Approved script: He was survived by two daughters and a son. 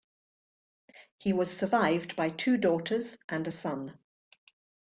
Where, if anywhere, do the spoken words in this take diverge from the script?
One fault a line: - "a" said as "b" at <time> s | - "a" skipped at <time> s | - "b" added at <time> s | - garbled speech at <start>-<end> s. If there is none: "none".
none